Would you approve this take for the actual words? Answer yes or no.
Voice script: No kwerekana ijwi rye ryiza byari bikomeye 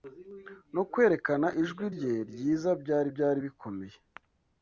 no